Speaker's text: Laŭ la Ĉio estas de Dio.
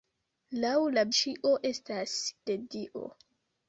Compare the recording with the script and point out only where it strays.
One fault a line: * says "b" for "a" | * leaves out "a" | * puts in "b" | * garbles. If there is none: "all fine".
all fine